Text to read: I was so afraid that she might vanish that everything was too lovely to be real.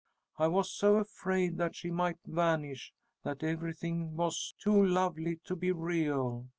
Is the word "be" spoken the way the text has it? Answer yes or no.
yes